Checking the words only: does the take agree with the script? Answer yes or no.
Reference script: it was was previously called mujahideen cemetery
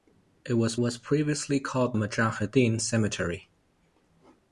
yes